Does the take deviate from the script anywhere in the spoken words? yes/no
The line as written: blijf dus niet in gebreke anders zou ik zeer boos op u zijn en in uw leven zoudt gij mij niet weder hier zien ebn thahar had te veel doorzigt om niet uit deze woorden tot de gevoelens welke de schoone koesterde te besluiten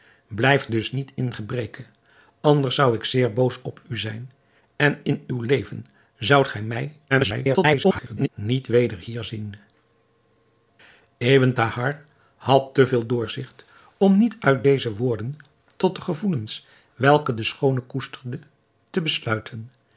yes